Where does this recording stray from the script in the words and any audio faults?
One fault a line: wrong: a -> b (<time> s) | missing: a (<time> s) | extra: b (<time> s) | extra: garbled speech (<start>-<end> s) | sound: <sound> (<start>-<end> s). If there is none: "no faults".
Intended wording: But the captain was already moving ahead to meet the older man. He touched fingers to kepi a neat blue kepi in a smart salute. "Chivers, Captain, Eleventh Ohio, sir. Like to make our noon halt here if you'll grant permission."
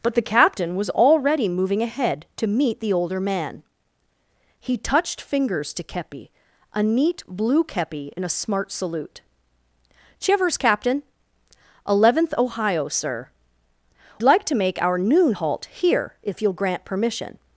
no faults